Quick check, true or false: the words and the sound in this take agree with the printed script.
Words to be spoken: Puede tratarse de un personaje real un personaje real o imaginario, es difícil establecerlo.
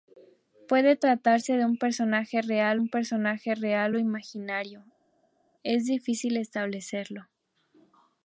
true